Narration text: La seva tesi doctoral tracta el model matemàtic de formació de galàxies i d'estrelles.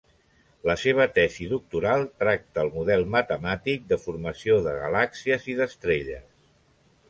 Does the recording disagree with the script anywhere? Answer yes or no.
no